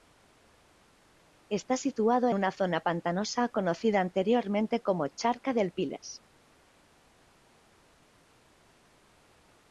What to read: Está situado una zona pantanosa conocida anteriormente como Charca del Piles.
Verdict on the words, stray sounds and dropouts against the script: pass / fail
pass